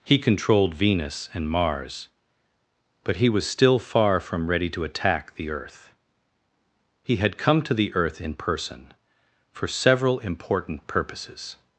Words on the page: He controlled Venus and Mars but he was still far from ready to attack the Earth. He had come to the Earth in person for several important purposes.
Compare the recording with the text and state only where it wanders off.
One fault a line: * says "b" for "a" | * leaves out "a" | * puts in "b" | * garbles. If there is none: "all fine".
all fine